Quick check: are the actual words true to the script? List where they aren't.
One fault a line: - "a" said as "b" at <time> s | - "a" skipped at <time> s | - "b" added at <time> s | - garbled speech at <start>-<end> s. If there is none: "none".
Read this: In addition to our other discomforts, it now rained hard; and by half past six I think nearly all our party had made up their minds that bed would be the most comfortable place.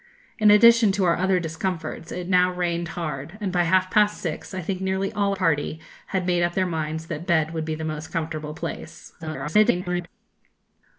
- "our" skipped at 5.3 s
- garbled speech at 9.2-10.1 s